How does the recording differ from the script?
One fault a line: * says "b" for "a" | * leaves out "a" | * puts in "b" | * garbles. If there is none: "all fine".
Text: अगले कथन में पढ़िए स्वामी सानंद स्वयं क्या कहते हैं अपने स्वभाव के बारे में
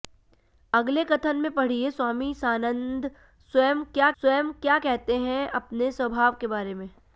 * puts in "स्वयं क्या"